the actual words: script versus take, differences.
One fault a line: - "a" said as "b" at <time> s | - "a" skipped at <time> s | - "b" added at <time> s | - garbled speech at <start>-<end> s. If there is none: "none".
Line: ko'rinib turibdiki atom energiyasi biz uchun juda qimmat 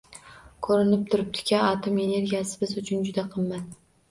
none